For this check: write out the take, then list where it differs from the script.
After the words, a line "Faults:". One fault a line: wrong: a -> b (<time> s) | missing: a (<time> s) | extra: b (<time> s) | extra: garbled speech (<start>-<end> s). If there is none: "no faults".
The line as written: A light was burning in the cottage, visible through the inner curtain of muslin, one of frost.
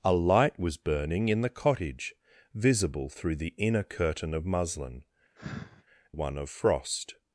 A light was burning in the cottage, visible through the inner curtain of muslin, one of frost.
Faults:
no faults